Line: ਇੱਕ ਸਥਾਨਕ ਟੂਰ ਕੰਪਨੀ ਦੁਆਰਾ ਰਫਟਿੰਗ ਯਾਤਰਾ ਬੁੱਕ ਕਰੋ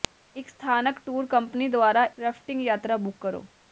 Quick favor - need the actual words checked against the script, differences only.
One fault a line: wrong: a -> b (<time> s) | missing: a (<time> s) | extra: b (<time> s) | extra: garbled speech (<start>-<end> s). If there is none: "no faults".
no faults